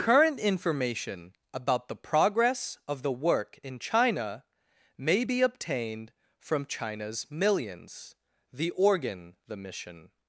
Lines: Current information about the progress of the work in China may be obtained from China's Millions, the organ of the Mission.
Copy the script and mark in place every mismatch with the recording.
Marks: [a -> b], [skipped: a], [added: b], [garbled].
Current information about the progress of the work in China may be obtained from China's Millions, the organ [skipped: of] the Mission.